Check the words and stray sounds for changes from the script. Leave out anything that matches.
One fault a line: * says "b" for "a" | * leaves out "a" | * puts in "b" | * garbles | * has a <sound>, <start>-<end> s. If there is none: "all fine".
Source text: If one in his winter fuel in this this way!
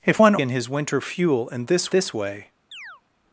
* has a chirp, 2.7-3.0 s